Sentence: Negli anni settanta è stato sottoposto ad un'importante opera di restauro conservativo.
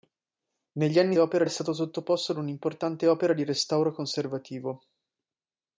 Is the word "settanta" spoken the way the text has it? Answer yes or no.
no